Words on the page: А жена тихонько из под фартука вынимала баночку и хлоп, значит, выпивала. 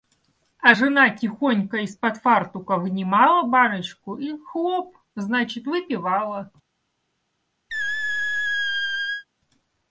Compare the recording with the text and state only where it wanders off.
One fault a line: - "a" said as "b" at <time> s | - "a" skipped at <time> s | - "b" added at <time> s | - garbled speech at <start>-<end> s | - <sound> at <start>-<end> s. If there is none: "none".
- squeak at 7.7-9.2 s